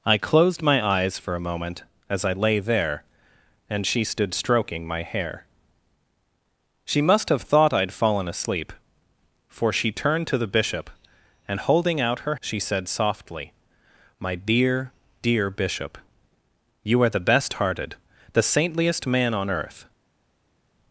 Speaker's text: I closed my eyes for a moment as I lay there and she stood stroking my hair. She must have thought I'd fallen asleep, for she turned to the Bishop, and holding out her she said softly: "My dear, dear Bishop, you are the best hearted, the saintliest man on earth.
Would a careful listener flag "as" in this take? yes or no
no